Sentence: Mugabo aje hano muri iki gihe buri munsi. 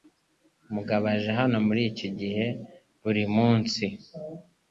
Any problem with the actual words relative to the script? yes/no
no